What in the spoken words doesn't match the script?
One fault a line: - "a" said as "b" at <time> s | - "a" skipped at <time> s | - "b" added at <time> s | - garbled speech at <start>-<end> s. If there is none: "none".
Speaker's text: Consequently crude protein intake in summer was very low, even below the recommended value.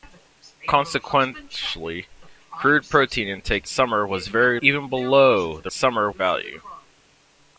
- "in" skipped at 3.7 s
- "low" skipped at 4.6 s
- "recommended" said as "summer" at 5.7 s